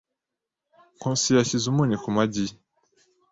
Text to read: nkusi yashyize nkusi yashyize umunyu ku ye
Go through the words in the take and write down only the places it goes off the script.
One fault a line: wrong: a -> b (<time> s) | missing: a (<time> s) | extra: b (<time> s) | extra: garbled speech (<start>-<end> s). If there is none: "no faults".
missing: nkusi yashyize (1.6 s)
extra: magi (2.1 s)